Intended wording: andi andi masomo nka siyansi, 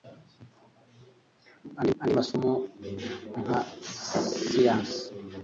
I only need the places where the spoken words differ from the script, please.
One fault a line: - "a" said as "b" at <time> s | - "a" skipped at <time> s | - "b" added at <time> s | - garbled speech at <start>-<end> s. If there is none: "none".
none